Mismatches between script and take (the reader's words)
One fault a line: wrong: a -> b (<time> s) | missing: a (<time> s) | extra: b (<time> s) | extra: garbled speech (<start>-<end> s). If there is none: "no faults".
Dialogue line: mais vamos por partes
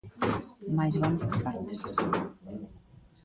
no faults